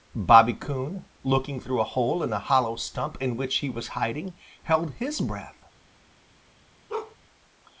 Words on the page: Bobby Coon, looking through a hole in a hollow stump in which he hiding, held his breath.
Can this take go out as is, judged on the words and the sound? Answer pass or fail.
fail